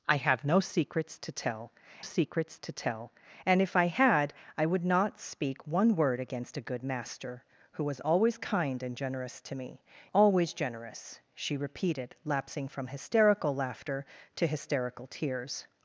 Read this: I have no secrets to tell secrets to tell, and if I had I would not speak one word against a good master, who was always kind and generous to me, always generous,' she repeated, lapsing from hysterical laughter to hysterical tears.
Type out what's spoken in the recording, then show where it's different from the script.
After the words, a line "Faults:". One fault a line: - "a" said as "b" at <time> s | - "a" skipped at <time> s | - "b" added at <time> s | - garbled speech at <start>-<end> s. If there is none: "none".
I have no secrets to tell secrets to tell, and if I had I would not speak one word against a good master, who was always kind and generous to me, always generous,' she repeated, lapsing from hysterical laughter to hysterical tears.
Faults:
none